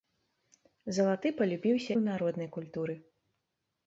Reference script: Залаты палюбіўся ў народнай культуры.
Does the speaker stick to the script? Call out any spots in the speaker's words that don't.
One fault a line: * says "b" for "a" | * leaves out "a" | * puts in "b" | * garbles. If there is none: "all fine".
all fine